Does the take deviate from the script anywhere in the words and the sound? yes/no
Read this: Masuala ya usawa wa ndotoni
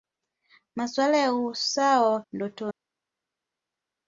no